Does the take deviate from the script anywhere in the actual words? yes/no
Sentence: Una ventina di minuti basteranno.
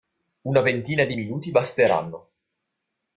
no